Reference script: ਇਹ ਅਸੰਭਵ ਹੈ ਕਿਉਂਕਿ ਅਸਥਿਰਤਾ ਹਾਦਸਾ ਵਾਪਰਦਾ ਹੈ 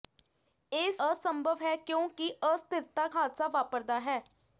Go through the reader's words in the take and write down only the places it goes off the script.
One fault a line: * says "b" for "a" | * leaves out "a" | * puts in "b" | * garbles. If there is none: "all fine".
all fine